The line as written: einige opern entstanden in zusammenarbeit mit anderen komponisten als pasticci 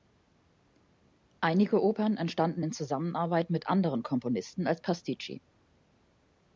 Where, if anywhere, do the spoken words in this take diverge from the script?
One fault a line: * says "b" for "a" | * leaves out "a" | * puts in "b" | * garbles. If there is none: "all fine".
all fine